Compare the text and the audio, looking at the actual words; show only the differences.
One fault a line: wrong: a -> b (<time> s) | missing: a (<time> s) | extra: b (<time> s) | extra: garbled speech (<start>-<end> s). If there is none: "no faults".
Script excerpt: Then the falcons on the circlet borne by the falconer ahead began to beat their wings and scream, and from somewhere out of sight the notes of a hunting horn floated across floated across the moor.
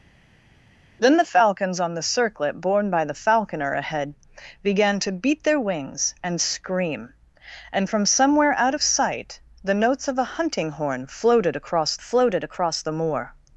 no faults